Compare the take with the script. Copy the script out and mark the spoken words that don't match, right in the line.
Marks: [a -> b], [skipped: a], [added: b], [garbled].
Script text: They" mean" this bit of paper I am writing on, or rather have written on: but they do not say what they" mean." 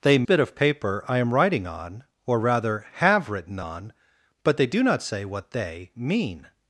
They" [skipped: mean" this] bit of paper I am writing on, or rather have written on: but they do not say what they" mean."